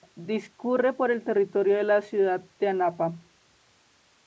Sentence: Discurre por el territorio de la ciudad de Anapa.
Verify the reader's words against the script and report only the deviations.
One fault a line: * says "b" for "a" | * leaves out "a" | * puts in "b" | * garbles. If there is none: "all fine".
all fine